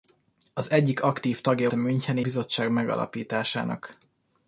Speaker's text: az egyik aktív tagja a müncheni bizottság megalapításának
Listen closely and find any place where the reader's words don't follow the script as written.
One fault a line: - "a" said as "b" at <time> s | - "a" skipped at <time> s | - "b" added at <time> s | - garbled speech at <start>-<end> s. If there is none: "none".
none